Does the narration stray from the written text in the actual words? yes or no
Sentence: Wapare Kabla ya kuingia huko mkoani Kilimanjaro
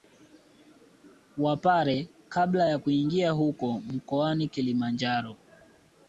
no